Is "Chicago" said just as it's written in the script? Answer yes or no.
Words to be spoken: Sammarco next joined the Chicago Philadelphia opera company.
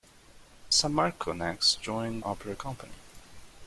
no